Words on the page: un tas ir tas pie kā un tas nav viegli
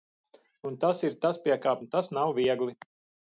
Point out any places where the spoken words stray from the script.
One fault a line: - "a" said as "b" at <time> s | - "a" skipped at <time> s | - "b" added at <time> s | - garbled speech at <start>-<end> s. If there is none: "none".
none